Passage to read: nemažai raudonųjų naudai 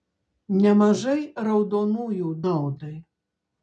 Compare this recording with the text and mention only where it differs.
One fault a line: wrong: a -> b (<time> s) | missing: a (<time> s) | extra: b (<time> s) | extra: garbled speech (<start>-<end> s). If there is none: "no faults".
no faults